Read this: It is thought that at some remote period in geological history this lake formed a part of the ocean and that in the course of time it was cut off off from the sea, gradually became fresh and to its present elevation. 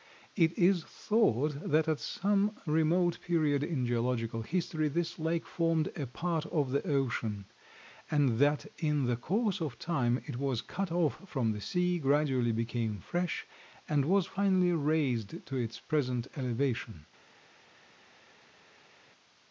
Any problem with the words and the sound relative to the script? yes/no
yes